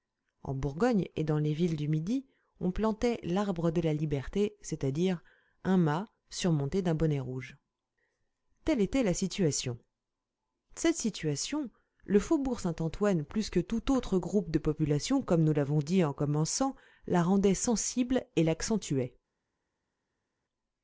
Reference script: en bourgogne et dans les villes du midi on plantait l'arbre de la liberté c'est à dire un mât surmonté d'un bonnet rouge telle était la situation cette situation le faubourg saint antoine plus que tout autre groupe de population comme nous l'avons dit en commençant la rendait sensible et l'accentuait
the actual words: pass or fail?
pass